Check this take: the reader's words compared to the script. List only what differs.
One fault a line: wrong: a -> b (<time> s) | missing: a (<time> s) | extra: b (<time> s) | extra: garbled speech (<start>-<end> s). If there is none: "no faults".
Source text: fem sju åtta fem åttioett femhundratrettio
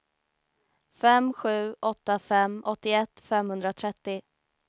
no faults